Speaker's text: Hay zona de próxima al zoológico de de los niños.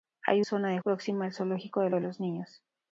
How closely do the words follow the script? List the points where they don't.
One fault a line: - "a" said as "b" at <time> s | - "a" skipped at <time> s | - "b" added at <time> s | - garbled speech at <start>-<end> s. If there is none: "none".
none